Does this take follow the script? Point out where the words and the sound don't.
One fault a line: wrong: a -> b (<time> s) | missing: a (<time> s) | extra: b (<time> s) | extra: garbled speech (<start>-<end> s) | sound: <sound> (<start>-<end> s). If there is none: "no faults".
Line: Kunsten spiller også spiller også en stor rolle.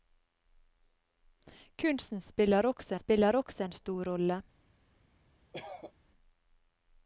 sound: cough (5.5-5.9 s)